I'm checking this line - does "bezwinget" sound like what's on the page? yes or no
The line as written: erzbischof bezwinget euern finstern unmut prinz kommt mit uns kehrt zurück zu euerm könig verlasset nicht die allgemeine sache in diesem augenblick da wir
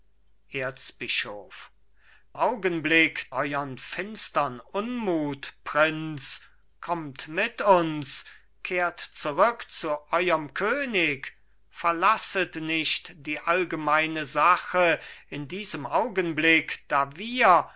no